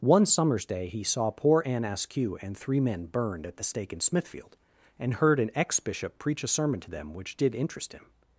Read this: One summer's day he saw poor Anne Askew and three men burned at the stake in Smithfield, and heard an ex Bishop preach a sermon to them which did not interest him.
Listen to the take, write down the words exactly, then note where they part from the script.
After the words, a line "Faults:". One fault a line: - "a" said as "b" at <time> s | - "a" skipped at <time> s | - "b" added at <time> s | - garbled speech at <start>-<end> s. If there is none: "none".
One summer's day he saw poor Anne Askew and three men burned at the stake in Smithfield, and heard an ex Bishop preach a sermon to them which did interest him.
Faults:
- "not" skipped at 7.5 s